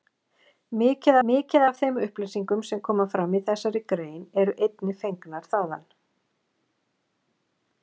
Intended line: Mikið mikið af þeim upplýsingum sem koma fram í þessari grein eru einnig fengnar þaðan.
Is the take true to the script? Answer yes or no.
yes